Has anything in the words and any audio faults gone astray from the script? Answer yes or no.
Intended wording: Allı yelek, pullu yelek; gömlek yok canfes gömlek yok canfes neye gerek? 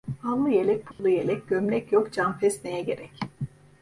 yes